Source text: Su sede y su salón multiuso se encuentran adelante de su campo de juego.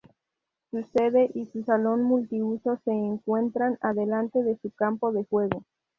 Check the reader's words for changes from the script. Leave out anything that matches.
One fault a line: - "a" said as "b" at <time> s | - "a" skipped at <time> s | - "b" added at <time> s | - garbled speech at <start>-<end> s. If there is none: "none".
none